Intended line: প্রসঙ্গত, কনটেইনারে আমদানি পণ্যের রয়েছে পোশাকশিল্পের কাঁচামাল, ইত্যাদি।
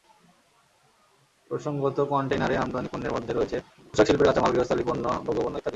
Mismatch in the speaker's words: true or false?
true